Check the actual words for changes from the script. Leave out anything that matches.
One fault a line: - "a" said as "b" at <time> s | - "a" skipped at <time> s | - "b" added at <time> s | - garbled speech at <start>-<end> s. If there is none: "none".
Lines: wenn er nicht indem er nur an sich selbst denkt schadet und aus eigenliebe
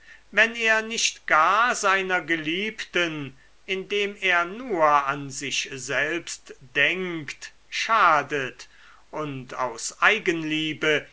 - "gar seiner geliebten" added at 1.3 s